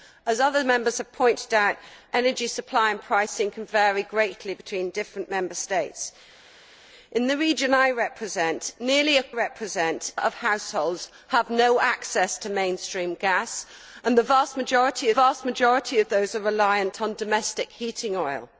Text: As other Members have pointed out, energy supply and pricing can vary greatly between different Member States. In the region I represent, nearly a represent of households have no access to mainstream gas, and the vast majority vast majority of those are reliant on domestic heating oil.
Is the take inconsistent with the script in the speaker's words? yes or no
no